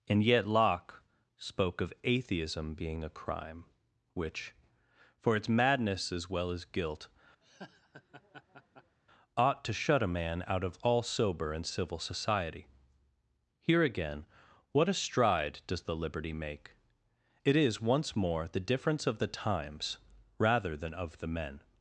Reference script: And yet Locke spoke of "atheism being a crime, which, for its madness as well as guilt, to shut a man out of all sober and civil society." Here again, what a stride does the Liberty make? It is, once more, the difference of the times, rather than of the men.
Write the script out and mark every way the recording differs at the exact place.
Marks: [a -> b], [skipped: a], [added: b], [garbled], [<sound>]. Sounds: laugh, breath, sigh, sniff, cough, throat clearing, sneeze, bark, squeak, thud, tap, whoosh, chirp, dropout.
And yet Locke spoke of "atheism being a crime, which, for its madness as well as guilt, [laugh] [added: ought] to shut a man out of all sober and civil society." Here again, what a stride does the Liberty make? It is, once more, the difference of the times, rather than of the men.